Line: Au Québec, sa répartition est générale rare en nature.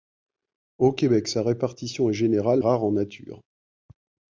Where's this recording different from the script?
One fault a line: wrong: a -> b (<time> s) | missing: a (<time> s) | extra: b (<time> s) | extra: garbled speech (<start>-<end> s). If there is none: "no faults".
no faults